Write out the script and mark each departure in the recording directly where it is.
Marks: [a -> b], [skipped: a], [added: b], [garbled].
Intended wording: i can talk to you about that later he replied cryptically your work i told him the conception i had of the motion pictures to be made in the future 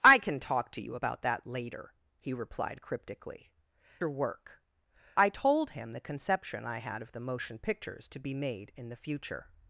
i can talk to you about that later he replied cryptically your work i told him the conception i had of the motion pictures to be made in the future